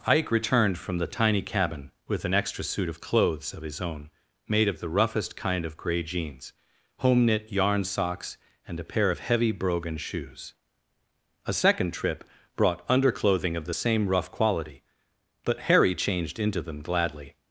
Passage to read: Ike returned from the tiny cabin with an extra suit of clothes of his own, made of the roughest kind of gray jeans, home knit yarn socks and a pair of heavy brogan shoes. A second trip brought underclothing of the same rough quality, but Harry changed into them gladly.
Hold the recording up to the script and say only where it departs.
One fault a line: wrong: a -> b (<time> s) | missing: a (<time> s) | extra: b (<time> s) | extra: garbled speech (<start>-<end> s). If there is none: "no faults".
no faults